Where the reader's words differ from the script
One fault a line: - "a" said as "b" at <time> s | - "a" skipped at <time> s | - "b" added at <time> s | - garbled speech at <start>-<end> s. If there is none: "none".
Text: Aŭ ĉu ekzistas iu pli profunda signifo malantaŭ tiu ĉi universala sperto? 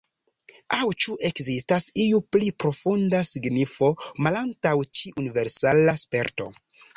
- "tiu" skipped at 4.8 s